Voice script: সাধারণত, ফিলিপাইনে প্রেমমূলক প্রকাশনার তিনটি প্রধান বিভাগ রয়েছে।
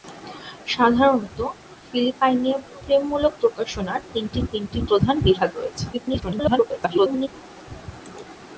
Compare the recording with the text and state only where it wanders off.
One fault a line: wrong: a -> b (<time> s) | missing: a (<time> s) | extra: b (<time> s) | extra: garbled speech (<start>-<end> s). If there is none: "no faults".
extra: তিনটি (4.5 s)
extra: garbled speech (5.9-7.3 s)